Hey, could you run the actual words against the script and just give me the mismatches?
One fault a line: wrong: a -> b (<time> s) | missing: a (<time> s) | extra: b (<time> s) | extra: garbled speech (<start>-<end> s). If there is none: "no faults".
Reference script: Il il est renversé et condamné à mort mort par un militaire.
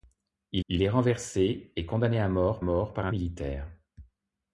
no faults